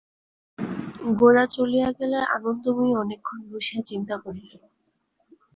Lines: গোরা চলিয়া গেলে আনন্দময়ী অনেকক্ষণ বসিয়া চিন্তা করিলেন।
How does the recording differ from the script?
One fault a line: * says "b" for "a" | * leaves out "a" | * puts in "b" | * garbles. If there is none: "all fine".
all fine